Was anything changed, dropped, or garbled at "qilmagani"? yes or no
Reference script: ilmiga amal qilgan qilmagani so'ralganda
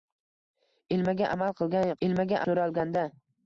yes